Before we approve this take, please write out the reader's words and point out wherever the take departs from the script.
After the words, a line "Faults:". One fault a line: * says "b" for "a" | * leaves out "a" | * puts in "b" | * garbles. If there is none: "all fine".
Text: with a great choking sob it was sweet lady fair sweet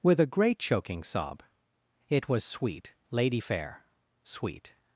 with a great choking sob it was sweet lady fair sweet
Faults:
all fine